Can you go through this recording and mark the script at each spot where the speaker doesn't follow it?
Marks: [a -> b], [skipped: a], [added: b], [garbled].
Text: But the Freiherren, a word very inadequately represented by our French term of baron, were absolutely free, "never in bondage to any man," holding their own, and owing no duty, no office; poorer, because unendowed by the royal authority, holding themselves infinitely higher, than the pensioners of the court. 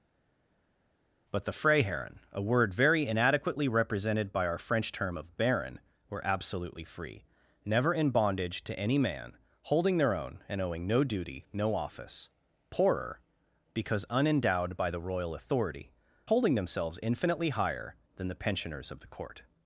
But the Freiherren, a word very inadequately represented by our French term of baron, were absolutely free, "never in bondage to any man," holding their own, and owing no duty, no office; poorer, because unendowed by the royal authority, holding themselves infinitely higher, than the pensioners of the court.